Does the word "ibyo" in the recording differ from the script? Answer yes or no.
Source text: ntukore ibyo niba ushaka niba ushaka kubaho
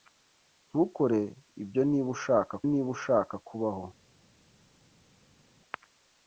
no